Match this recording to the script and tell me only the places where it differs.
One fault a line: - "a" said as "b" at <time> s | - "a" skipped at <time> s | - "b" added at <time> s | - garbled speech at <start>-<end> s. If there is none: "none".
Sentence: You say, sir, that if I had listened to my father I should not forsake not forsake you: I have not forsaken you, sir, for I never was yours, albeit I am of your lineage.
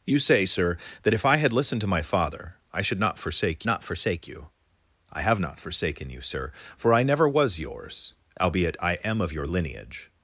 none